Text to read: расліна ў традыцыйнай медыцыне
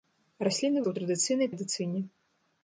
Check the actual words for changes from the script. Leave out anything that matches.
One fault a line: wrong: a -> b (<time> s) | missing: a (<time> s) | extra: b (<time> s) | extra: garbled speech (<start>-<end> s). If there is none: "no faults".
no faults